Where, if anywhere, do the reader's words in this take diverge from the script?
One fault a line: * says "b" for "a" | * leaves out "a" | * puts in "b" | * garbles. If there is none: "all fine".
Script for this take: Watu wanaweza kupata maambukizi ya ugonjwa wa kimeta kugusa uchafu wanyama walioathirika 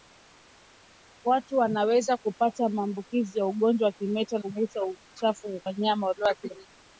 all fine